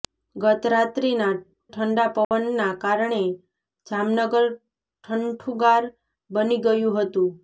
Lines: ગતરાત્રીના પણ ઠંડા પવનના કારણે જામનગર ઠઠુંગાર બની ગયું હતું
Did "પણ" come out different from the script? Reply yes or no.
yes